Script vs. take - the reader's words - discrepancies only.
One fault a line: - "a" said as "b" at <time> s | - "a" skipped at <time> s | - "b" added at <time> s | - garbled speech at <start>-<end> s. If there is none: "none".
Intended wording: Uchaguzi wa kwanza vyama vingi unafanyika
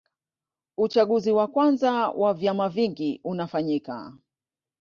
- "wa" added at 2.1 s